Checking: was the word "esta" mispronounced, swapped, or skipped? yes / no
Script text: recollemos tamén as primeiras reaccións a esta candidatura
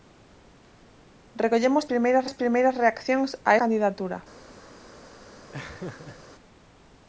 yes